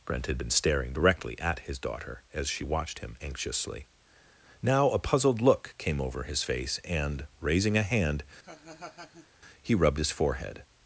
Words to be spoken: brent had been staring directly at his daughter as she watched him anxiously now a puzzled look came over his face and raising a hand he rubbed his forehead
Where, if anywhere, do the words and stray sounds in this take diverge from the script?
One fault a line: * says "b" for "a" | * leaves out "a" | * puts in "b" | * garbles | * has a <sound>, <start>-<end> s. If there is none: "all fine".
* has a laugh, 8.4-9.3 s